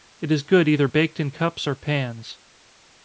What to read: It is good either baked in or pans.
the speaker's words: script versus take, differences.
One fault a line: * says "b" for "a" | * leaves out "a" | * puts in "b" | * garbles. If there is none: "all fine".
* puts in "cups"